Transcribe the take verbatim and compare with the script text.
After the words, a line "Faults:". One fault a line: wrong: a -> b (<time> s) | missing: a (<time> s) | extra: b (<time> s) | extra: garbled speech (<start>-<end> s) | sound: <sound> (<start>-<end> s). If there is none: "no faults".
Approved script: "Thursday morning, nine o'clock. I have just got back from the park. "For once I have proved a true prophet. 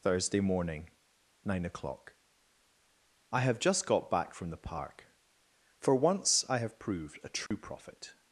"Thursday morning, nine o'clock. I have just got back from the park. "For once I have proved a true prophet.
Faults:
sound: dropout (7.5-7.5 s)